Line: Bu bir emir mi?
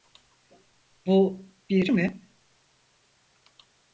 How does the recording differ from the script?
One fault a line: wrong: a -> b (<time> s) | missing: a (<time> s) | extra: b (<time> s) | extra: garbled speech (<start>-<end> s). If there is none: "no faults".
missing: emir (1.9 s)